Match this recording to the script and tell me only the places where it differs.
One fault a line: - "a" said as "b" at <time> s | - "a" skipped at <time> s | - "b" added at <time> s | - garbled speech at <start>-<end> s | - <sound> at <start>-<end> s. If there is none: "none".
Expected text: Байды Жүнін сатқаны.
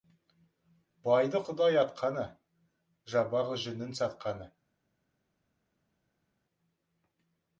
- "Құдай атқаны жабағы" added at 1.5 s